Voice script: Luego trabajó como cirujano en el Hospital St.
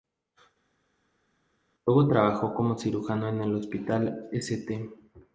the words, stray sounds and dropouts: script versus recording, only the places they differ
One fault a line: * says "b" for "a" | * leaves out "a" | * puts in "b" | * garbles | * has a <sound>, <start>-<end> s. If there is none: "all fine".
all fine